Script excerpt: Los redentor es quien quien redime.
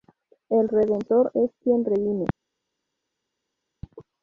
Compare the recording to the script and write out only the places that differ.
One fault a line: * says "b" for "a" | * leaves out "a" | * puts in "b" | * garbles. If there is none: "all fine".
* says "El" for "Los"
* leaves out "quien"